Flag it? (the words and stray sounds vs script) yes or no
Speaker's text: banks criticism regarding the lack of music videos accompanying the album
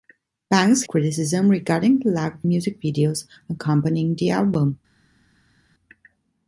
no